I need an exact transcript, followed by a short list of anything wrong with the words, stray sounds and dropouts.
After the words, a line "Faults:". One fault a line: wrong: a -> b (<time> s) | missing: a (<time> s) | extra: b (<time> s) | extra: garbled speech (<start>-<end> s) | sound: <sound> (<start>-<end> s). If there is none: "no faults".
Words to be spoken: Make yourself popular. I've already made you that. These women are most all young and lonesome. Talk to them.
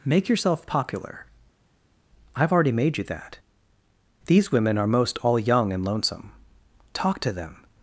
Make yourself popular. I've already made you that. These women are most all young and lonesome. Talk to them.
Faults:
no faults